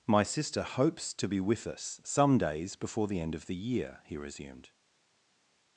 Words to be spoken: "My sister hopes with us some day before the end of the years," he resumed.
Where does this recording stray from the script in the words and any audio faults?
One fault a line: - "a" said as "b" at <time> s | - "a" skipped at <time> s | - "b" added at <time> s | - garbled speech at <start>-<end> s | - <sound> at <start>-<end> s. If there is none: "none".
- "to be" added at 1.1 s
- "day" said as "days" at 2.4 s
- "years" said as "year" at 3.5 s